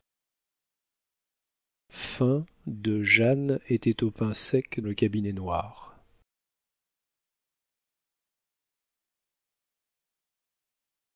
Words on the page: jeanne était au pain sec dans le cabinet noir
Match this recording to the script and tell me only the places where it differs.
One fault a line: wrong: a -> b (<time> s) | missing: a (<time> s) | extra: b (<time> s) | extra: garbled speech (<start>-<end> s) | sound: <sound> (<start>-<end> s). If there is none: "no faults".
missing: dans (4.8 s)